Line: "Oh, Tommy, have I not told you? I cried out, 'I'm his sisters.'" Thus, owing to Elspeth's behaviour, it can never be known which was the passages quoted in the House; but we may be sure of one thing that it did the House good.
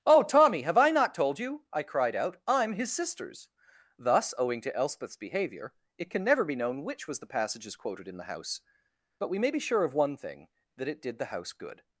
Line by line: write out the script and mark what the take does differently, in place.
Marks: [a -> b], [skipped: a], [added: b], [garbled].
"Oh, Tommy, have I not told you? I cried out, 'I'm his sisters.'" Thus, owing to Elspeth's behaviour, it can never be known which was the passages quoted in the House; but we may be sure of one thing that it did the House good.